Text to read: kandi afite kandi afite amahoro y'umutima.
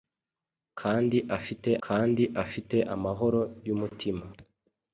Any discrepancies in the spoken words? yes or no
no